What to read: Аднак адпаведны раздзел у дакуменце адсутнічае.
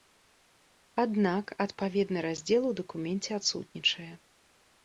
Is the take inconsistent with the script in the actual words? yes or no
no